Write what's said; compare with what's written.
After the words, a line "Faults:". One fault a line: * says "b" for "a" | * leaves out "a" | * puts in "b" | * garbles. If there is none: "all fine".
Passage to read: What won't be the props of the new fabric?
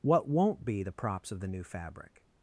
What won't be the props of the new fabric?
Faults:
all fine